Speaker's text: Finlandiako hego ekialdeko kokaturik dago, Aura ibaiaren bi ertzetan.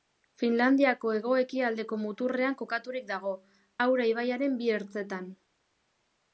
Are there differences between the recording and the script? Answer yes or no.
yes